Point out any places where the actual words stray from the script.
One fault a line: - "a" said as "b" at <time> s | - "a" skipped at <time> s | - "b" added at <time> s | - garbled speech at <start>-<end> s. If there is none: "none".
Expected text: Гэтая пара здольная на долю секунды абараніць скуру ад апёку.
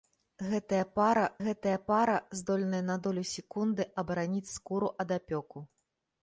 - "гэтая пара" added at 1.4 s